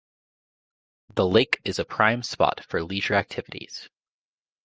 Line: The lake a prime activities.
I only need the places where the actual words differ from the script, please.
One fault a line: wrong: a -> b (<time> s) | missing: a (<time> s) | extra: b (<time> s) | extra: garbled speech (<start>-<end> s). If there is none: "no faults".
extra: is (1.6 s)
extra: spot for leisure (2.2 s)